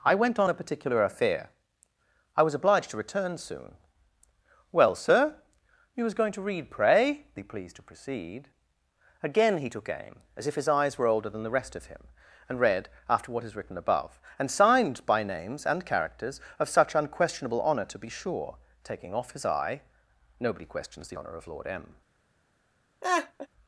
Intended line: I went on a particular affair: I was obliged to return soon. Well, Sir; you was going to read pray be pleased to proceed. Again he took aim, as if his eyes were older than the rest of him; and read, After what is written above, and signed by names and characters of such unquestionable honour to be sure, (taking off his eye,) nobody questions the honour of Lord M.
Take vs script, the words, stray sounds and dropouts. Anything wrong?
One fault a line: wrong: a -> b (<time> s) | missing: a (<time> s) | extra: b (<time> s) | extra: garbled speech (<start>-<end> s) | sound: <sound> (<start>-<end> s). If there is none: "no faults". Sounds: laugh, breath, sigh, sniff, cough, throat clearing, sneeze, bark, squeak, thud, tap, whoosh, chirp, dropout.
sound: laugh (23.0-23.5 s)